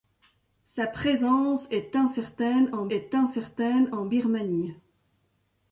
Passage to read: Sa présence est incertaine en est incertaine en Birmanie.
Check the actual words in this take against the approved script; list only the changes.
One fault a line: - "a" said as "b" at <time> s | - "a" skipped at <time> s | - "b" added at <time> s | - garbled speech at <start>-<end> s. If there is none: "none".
none